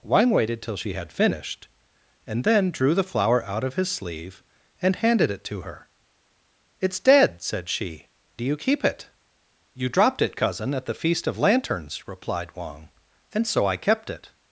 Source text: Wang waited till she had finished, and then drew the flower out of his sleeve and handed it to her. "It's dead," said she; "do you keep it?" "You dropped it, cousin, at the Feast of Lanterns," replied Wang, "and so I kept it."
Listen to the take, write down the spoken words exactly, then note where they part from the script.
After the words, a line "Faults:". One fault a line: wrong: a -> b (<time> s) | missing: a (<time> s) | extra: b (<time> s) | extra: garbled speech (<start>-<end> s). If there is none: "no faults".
Wang waited till she had finished, and then drew the flower out of his sleeve and handed it to her. "It's dead," said she; "do you keep it?" "You dropped it, cousin, at the Feast of Lanterns," replied Wang, "and so I kept it."
Faults:
no faults